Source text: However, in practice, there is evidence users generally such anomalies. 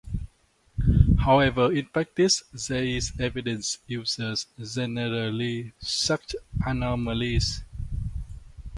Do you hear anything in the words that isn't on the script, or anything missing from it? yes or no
no